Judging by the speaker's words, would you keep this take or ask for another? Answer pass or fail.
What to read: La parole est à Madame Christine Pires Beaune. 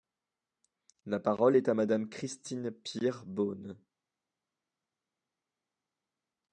pass